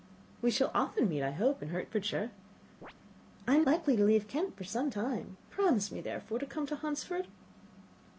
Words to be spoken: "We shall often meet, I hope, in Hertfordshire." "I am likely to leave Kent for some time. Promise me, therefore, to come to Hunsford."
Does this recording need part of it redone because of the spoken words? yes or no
no